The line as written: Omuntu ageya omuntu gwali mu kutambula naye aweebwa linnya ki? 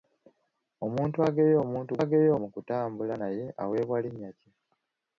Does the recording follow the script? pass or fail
fail